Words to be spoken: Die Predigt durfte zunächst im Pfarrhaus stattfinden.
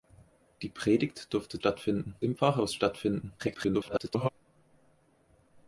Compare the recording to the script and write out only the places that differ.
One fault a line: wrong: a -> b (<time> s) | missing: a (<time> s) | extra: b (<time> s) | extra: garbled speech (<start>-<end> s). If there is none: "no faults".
wrong: zunächst -> stattfinden (1.6 s)
extra: garbled speech (3.4-4.3 s)